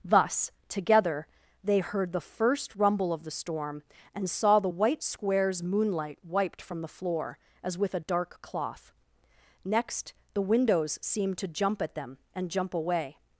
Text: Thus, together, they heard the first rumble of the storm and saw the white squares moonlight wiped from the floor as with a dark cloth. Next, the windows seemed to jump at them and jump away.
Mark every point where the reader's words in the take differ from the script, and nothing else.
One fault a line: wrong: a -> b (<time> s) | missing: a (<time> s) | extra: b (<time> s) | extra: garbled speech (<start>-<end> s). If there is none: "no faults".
no faults